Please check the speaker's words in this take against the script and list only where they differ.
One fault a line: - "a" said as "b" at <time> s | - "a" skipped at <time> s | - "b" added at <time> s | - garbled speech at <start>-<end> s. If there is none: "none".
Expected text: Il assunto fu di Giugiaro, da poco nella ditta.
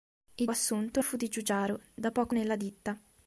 none